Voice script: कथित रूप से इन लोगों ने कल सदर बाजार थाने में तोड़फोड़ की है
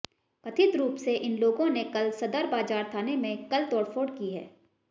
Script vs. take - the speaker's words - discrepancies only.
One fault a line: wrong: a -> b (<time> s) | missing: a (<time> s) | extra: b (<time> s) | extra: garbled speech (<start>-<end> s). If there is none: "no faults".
extra: कल (3.5 s)